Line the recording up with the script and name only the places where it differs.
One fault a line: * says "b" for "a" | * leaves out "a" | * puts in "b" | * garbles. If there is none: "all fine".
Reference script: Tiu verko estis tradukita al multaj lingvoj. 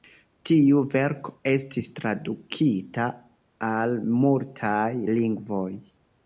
all fine